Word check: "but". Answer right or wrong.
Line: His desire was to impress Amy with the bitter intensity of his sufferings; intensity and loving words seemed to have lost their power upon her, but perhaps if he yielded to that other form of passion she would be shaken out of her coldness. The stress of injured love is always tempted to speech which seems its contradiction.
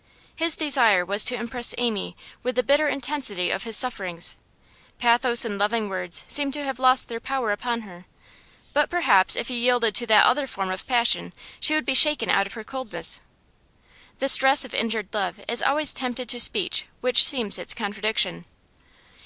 right